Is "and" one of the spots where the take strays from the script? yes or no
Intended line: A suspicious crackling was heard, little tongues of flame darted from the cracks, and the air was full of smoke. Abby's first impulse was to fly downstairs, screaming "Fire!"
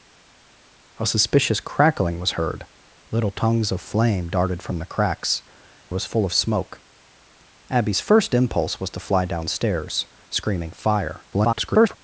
yes